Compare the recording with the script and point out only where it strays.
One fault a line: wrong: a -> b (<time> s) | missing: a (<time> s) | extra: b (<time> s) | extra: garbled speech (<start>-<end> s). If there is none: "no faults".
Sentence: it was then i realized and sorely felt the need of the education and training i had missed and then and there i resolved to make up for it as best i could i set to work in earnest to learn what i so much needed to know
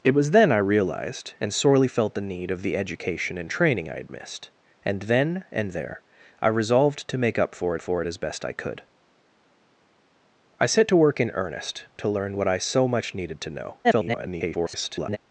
extra: for (7.8 s)
extra: garbled speech (13.8-15.2 s)